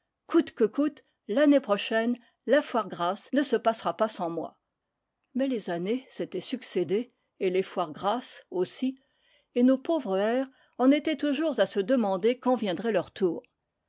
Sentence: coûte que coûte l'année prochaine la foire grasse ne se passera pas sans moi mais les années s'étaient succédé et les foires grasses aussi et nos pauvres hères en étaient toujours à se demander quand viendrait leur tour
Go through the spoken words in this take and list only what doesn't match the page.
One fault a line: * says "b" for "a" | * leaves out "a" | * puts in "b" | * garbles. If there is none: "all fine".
all fine